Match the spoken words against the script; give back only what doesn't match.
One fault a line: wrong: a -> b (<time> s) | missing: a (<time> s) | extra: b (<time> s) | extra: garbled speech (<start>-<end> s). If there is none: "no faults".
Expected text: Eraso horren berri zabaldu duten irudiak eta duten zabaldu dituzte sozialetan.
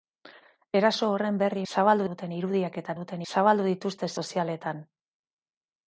no faults